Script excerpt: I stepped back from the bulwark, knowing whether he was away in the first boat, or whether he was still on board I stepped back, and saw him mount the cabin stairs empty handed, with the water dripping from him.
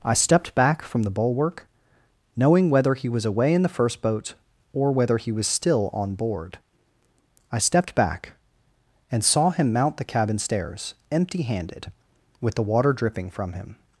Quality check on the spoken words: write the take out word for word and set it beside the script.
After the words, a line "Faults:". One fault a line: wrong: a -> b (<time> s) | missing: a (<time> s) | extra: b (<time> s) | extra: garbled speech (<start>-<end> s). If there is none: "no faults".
I stepped back from the bulwark, knowing whether he was away in the first boat, or whether he was still on board I stepped back, and saw him mount the cabin stairs empty handed, with the water dripping from him.
Faults:
no faults